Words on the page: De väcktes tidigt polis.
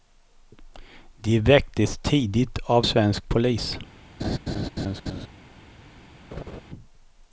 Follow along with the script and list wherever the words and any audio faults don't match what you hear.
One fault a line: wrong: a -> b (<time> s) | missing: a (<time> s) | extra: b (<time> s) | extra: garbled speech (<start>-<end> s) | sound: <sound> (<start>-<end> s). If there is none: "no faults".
extra: av svensk (2.6 s)
sound: laugh (4.2-5.3 s)
sound: laugh (6.3-6.6 s)